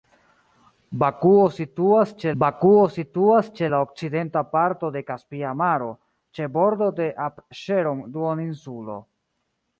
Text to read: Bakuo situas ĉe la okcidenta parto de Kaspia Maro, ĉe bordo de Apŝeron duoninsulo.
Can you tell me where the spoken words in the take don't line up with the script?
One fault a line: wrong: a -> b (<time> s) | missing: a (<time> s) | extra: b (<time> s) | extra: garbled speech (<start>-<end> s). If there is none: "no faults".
extra: bakuo situas ĉe (2.4 s)